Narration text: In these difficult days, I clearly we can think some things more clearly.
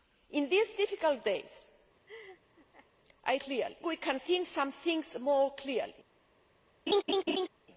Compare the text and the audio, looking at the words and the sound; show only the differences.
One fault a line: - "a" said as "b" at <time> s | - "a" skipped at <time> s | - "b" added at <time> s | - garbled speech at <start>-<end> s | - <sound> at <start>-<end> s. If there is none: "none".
- laugh at 2.1-2.9 s
- laugh at 6.9-7.5 s